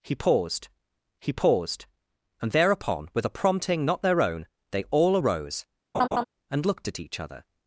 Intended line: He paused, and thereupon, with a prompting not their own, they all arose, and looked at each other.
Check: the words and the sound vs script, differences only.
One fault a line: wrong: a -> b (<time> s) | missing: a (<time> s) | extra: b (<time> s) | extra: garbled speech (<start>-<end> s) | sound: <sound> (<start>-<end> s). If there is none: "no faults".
extra: he paused (1.2 s)
sound: laugh (5.9-6.2 s)